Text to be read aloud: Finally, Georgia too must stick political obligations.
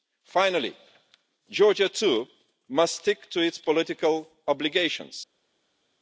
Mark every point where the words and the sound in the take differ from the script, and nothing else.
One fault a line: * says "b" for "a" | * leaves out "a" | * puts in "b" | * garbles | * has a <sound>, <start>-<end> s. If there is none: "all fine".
* puts in "to its"